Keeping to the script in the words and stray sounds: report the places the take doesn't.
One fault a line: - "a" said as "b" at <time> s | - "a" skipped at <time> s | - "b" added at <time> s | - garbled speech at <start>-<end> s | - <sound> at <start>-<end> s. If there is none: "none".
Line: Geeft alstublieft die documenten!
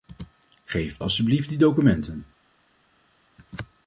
none